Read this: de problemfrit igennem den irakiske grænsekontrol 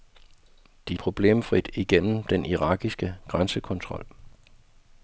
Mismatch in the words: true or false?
false